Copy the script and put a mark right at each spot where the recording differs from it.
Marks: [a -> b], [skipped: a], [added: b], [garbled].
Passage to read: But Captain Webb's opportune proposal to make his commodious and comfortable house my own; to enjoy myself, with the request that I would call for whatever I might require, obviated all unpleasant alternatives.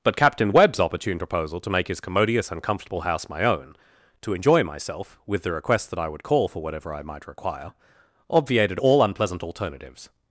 But Captain Webb's opportune proposal to make his commodious and comfortable house my own; to enjoy myself, with the request that I would call for whatever I might require, obviated all unpleasant alternatives.